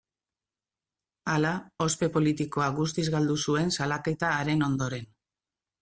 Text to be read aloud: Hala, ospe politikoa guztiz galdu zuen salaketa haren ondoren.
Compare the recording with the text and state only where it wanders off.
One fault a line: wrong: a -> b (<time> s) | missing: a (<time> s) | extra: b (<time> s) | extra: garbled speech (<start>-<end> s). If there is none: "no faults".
no faults